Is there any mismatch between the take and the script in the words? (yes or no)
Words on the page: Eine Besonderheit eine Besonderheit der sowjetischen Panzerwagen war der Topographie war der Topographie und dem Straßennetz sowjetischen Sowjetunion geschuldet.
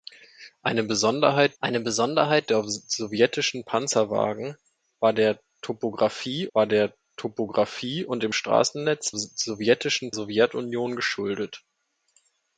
no